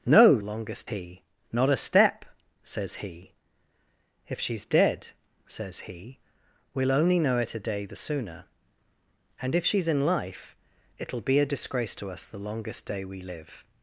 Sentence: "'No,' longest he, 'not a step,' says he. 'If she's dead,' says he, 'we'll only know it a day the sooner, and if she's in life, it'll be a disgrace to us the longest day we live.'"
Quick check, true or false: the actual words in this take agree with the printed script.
true